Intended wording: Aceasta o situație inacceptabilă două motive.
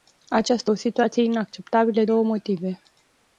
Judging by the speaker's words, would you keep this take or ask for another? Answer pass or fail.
pass